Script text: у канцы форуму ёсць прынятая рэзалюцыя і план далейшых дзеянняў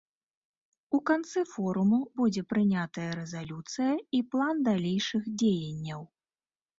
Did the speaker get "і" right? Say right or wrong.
right